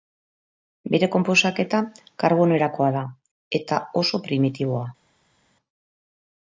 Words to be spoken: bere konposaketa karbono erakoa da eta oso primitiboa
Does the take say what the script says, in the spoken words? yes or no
yes